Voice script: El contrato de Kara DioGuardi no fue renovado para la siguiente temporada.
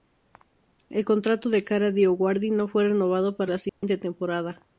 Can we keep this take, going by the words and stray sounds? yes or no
no